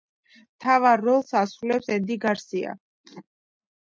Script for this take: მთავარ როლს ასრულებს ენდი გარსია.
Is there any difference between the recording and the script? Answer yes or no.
no